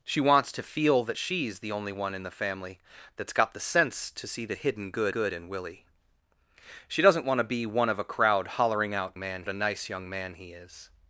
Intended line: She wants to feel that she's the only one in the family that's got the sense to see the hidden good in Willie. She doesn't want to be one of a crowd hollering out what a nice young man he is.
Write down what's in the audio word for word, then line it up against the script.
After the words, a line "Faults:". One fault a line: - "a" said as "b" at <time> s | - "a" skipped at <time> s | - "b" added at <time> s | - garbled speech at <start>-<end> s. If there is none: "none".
She wants to feel that she's the only one in the family that's got the sense to see the hidden good good in Willie. She doesn't want to be one of a crowd hollering out man a nice young man he is.
Faults:
- "good" added at 5.1 s
- "what" said as "man" at 9.2 s